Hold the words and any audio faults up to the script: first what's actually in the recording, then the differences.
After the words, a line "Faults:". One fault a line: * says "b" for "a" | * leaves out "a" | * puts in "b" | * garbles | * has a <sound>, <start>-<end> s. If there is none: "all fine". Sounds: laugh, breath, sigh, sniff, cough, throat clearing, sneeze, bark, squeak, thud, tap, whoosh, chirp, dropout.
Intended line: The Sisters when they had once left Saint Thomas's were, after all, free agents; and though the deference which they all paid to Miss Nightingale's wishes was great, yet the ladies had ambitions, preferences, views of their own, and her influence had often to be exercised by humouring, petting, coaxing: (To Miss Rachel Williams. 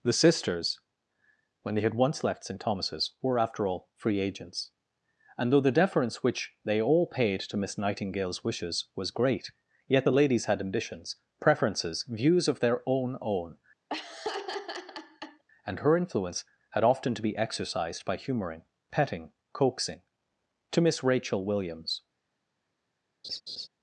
The Sisters when they had once left Saint Thomas's were, after all, free agents; and though the deference which they all paid to Miss Nightingale's wishes was great, yet the ladies had ambitions, preferences, views of their own own, and her influence had often to be exercised by humouring, petting, coaxing: (To Miss Rachel Williams.
Faults:
* puts in "own"
* has a laugh, 13.9-15.4 s
* has a laugh, 23.2-23.7 s